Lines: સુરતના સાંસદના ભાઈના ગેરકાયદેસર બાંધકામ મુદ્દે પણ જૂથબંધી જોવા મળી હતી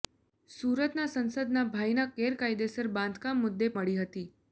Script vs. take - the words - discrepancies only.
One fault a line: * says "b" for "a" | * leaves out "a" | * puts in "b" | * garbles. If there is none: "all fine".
* leaves out "પણ જૂથબંધી જોવા"